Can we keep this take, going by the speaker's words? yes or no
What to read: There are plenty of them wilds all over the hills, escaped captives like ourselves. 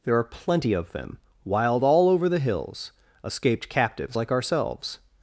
no